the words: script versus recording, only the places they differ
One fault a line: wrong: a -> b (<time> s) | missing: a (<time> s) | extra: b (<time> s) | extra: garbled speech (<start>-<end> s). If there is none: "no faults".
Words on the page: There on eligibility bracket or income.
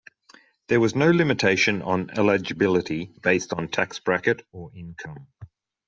extra: was no limitation (0.8 s)
extra: based on tax (3.2 s)